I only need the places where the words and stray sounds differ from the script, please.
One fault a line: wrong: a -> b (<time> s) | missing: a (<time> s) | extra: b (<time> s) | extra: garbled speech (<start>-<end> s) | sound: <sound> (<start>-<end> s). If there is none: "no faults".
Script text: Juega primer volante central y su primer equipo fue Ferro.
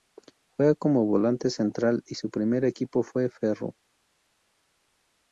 wrong: primer -> como (0.7 s)